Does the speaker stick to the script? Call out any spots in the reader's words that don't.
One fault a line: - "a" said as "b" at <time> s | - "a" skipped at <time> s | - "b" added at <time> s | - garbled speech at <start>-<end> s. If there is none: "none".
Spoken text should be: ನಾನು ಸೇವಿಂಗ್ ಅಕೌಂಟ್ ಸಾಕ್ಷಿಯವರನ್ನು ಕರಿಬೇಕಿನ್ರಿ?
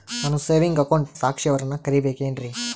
none